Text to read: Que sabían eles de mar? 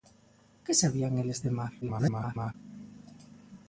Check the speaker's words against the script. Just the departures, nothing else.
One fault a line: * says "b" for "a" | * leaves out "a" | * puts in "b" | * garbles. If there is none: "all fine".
* garbles